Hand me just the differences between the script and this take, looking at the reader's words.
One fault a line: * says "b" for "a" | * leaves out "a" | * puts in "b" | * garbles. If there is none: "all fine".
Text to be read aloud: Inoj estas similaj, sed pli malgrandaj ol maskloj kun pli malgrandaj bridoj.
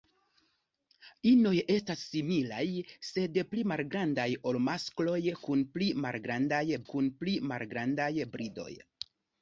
* puts in "kun pli malgrandaj"